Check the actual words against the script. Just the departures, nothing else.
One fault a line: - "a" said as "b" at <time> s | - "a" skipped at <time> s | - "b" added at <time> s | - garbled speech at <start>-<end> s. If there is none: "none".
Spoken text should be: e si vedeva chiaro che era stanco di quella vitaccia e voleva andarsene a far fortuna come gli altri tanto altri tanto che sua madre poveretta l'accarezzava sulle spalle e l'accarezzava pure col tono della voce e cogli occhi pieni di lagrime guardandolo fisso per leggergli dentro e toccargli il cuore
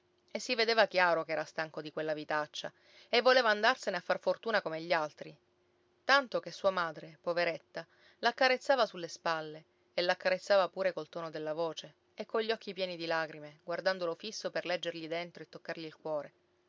- "altri tanto" skipped at 6.4 s